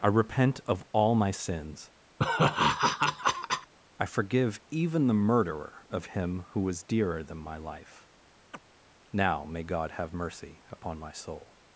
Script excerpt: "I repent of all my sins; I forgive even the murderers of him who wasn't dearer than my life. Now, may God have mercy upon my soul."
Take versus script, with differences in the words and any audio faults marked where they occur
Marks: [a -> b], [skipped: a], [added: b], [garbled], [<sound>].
"I repent of all my sins; [laugh] I forgive even the [murderers -> murderer] of him who [wasn't -> was] dearer than my life. [chirp] Now, may God have mercy upon my soul."